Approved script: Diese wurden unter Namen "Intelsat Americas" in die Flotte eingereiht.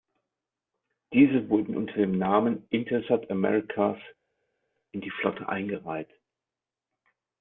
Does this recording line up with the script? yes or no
no